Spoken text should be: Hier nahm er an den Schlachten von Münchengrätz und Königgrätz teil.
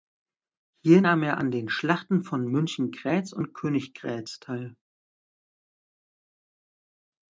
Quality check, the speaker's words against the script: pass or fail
pass